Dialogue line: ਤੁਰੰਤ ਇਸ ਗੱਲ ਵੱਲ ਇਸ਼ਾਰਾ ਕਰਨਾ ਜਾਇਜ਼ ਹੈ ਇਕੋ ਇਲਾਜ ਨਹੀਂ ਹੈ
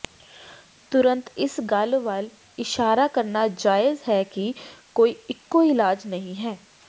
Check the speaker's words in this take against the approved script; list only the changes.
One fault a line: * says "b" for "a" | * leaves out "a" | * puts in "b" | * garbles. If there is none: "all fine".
* puts in "ਕਿ ਕੋਈ"